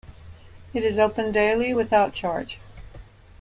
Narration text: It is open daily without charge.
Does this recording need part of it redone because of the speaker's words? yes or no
no